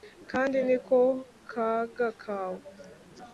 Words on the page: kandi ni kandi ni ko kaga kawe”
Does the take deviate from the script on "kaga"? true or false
false